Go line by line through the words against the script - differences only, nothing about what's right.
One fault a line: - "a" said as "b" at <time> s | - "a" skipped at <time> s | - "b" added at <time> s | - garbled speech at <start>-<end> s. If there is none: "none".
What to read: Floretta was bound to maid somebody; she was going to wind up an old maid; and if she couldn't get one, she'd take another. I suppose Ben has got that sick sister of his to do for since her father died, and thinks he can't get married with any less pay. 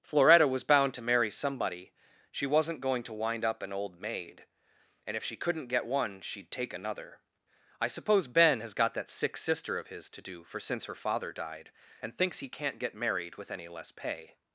- "maid" said as "marry" at 1.0 s
- "was" said as "wasn't" at 2.5 s